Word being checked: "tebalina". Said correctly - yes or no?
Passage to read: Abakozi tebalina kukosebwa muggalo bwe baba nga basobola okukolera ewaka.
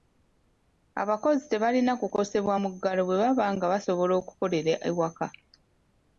yes